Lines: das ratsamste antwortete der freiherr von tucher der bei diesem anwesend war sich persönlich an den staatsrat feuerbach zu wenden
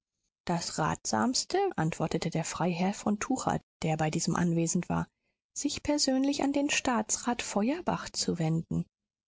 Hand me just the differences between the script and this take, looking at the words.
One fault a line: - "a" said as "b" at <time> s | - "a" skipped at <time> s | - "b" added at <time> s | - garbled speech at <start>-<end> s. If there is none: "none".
none